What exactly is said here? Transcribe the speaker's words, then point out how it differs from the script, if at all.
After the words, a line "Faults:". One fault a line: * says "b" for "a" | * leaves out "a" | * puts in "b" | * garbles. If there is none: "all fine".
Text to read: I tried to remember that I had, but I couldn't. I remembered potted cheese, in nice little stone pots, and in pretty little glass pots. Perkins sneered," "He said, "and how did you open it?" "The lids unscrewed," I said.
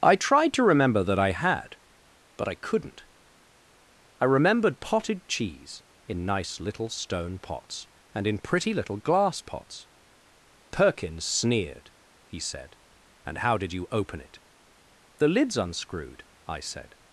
I tried to remember that I had, but I couldn't. I remembered potted cheese, in nice little stone pots, and in pretty little glass pots. Perkins sneered," "He said, "and how did you open it?" "The lids unscrewed," I said.
Faults:
all fine